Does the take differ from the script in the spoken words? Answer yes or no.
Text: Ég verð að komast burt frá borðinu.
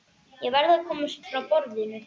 yes